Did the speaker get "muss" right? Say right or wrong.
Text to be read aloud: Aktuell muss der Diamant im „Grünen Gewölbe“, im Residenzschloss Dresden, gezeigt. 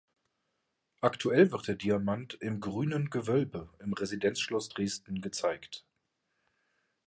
wrong